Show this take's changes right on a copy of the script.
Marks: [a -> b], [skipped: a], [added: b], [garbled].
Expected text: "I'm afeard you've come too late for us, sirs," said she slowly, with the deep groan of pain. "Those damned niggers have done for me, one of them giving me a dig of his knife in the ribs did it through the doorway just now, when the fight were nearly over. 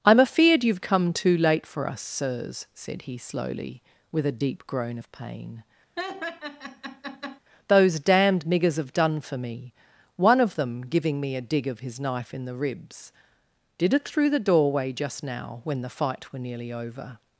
"I'm afeard you've come too late for us, sirs," said [she -> he] slowly, with [the -> a] deep groan of pain. "Those damned niggers have done for me, one of them giving me a dig of his knife in the ribs did it through the doorway just now, when the fight were nearly over.